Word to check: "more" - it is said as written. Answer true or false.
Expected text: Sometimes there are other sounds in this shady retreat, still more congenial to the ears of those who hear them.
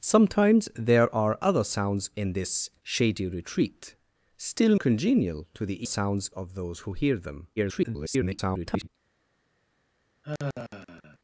false